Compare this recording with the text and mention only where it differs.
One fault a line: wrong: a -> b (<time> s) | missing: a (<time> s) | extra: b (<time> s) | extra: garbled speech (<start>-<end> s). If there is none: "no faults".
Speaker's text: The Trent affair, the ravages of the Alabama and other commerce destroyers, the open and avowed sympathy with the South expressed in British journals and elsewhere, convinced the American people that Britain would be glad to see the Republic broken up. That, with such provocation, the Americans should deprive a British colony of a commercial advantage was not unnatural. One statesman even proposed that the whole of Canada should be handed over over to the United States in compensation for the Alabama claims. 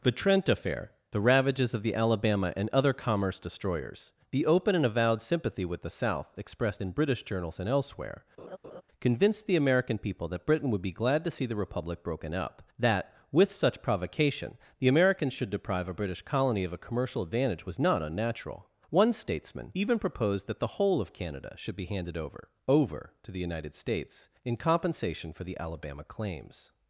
no faults